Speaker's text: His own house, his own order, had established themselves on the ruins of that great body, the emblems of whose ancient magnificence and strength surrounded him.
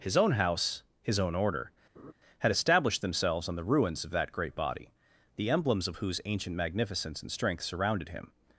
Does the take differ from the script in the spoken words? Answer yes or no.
no